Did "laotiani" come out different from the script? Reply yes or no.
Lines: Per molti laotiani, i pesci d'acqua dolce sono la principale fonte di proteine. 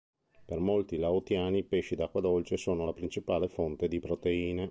no